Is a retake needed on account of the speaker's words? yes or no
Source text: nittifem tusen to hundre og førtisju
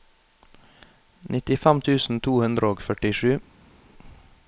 no